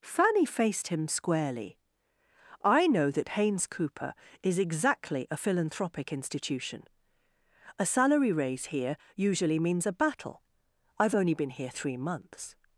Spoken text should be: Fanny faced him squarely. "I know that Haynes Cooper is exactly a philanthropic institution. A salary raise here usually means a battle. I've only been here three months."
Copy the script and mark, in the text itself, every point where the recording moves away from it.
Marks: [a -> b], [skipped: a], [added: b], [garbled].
Fanny faced him squarely. "I know that Haynes Cooper is exactly a philanthropic institution. A salary raise here usually means a battle. I've only been here three months."